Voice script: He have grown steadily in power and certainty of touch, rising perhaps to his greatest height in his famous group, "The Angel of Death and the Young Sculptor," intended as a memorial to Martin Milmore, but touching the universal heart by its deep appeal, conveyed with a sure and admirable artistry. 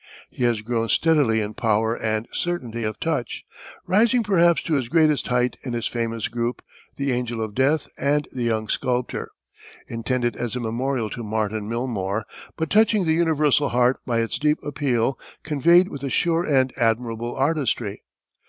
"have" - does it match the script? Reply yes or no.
no